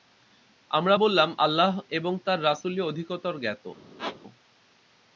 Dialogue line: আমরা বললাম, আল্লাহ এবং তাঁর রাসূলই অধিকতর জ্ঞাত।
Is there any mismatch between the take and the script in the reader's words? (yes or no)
no